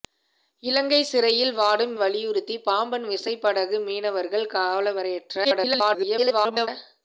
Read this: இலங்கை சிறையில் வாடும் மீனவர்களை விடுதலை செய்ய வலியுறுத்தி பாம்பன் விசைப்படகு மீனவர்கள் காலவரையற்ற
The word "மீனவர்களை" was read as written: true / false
false